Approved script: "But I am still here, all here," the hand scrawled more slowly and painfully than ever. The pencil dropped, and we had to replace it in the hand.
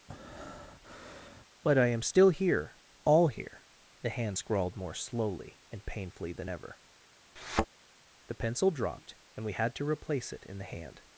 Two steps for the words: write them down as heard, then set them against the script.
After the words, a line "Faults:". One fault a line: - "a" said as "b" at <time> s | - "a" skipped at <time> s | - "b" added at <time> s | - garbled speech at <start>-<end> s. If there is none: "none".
"But I am still here, all here," the hand scrawled more slowly and painfully than ever. The pencil dropped, and we had to replace it in the hand.
Faults:
none